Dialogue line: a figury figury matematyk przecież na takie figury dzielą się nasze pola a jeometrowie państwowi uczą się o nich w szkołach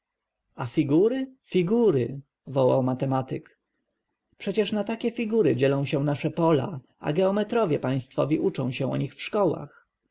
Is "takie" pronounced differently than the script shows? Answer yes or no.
no